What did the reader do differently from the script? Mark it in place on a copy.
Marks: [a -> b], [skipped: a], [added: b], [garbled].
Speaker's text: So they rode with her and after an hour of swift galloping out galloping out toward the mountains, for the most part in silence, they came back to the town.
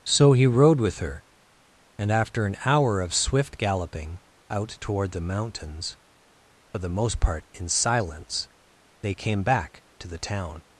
So [they -> he] rode with her and after an hour of swift galloping out [skipped: galloping out] toward the mountains, for the most part in silence, they came back to the town.